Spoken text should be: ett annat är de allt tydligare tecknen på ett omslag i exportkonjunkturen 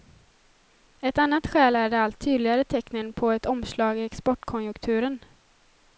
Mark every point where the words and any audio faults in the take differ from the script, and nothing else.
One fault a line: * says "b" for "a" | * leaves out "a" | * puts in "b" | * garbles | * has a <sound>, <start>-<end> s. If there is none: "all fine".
* puts in "skäl"